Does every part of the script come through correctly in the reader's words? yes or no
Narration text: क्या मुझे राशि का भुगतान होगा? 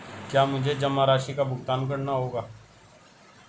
no